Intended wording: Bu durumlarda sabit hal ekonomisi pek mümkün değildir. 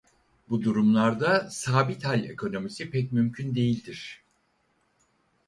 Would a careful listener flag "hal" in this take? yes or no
no